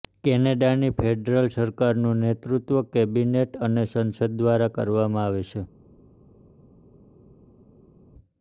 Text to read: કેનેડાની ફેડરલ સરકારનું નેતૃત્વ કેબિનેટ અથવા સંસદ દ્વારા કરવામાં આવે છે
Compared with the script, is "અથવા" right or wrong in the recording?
wrong